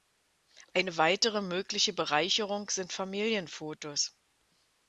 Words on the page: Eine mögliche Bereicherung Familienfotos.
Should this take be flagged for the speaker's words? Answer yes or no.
yes